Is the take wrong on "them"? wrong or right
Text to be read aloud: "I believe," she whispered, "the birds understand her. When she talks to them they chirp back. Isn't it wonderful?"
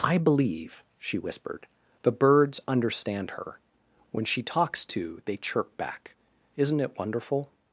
wrong